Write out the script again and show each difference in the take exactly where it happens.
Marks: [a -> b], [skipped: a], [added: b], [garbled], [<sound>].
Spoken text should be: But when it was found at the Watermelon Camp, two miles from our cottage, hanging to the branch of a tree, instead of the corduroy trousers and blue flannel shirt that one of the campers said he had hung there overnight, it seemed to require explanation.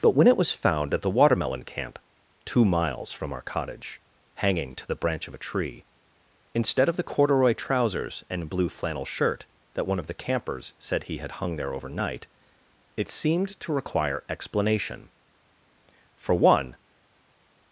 But when it was found at the Watermelon Camp, two miles from our cottage, hanging to the branch of a tree, instead of the corduroy trousers and blue flannel shirt that one of the campers said he had hung there overnight, it seemed to require explanation. [added: For one]